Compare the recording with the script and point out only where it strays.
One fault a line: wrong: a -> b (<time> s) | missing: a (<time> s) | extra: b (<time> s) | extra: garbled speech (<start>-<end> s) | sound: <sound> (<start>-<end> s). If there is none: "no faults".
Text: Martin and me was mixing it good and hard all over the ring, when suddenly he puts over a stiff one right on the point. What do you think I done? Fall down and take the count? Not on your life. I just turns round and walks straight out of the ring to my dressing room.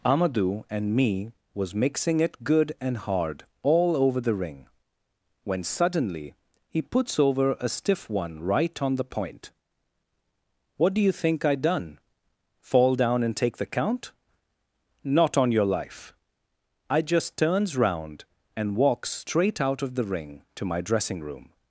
wrong: Martin -> Amadou (0.0 s)